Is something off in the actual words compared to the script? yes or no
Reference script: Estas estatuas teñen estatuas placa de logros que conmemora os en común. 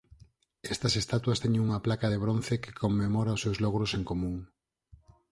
yes